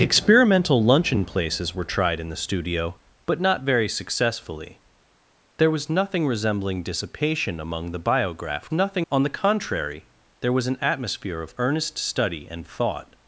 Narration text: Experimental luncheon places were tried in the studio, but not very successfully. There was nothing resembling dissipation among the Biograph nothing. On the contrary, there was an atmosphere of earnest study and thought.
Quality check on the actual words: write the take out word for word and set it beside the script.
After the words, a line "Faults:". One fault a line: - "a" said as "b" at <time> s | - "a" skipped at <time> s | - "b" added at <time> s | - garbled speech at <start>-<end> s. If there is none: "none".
Experimental luncheon places were tried in the studio, but not very successfully. There was nothing resembling dissipation among the Biograph nothing. On the contrary, there was an atmosphere of earnest study and thought.
Faults:
none